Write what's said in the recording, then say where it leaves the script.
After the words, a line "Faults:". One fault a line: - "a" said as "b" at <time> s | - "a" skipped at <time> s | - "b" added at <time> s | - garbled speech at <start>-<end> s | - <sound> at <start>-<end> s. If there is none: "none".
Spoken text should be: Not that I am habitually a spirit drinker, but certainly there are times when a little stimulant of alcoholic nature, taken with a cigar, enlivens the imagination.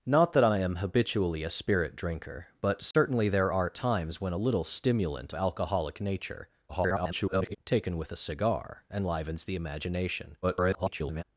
Not that I am habitually a spirit drinker, but certainly there are times when a little stimulant alcoholic nature, [garbled] taken with a cigar, enlivens the imagination. [garbled]
Faults:
- dropout at 2.9-2.9 s
- "of" skipped at 5.3 s
- garbled speech at 6.7-7.6 s
- garbled speech at 10.4-11.2 s